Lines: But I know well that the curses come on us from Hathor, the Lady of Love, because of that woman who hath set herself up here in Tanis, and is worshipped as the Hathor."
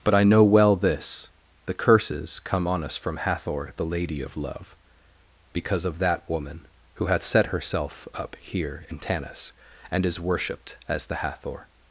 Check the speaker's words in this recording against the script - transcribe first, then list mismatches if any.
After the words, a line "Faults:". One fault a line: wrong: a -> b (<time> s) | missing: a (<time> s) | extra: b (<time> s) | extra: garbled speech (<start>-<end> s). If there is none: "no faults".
But I know well this the curses come on us from Hathor, the Lady of Love, because of that woman who hath set herself up here in Tanis, and is worshipped as the Hathor."
Faults:
wrong: that -> this (0.8 s)